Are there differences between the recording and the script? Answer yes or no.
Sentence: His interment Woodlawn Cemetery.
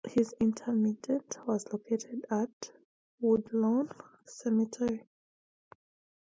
yes